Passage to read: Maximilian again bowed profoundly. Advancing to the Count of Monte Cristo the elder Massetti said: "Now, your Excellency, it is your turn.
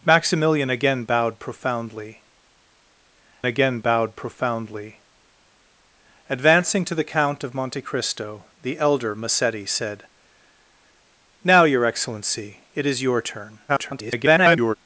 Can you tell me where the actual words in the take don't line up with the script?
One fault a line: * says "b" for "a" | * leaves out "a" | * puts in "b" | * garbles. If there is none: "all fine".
* puts in "again bowed profoundly"
* garbles